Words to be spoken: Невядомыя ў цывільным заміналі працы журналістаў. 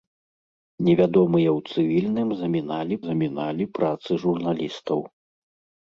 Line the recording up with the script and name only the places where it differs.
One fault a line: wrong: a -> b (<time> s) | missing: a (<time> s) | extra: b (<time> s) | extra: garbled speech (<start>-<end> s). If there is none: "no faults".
extra: заміналі (3.1 s)